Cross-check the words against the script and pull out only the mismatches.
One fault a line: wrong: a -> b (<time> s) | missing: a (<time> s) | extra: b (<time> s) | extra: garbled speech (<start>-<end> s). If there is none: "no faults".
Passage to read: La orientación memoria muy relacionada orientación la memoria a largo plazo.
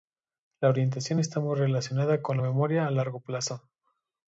wrong: memoria -> está (1.2 s)
wrong: orientación -> con (2.2 s)